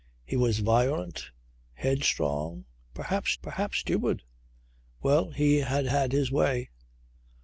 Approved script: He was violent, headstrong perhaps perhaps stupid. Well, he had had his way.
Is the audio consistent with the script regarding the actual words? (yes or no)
yes